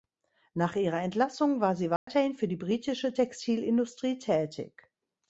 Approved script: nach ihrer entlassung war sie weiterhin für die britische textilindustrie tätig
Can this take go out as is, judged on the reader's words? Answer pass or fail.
pass